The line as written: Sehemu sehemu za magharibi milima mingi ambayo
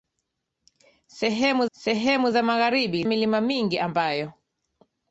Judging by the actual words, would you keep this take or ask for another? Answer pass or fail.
pass